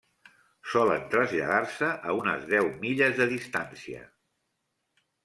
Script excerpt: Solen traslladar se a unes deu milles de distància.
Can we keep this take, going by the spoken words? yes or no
yes